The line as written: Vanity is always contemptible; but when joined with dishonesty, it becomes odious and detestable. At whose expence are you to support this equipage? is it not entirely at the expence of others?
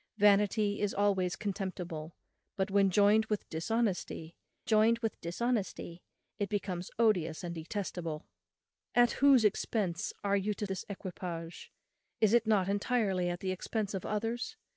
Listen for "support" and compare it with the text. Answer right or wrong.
wrong